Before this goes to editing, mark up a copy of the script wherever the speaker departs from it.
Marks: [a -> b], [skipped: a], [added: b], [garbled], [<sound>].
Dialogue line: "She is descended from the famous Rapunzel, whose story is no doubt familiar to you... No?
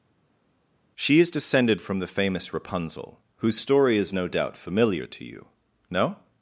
"She is descended from the famous Rapunzel, whose story is no doubt familiar to you... No?